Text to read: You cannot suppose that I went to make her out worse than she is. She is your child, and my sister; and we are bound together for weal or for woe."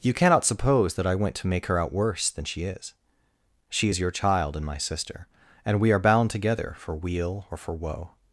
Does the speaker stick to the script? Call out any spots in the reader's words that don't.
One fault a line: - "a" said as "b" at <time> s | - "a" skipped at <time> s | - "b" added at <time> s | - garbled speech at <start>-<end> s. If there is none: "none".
none